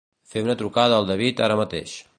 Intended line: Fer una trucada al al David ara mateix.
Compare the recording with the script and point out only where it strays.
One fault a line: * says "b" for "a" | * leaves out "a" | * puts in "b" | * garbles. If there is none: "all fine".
* leaves out "al"